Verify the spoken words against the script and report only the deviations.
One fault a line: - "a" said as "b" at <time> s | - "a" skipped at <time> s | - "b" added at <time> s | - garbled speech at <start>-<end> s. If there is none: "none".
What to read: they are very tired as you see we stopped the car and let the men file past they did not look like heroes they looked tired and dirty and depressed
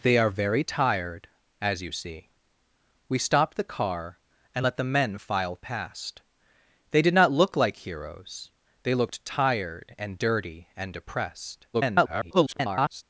- garbled speech at 11.7-13.0 s